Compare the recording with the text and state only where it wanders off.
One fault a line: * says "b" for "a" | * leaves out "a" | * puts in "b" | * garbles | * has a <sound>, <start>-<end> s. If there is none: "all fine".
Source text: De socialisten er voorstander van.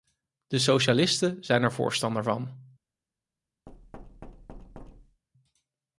* puts in "zijn"
* has a thud, 3.7-5.2 s